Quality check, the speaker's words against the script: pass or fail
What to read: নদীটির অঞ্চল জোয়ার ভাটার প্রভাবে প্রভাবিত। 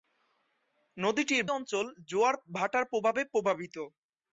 pass